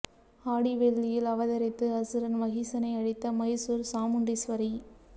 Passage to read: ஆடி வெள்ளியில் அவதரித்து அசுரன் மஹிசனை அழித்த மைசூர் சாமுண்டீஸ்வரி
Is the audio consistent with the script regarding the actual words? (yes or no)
yes